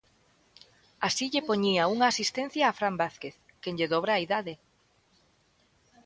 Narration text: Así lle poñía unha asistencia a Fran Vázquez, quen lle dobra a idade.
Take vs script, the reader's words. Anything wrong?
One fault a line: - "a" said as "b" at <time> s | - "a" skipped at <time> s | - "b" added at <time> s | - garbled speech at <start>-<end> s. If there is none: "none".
none